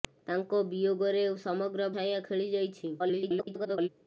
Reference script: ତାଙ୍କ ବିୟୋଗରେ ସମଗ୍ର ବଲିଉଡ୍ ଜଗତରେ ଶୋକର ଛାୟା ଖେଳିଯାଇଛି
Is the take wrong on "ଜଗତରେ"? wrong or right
wrong